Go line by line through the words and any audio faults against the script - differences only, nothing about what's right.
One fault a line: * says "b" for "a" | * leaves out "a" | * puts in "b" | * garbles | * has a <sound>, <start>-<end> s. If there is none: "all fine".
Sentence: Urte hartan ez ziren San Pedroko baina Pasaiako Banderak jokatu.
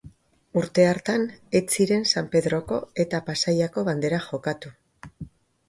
* says "eta" for "baina"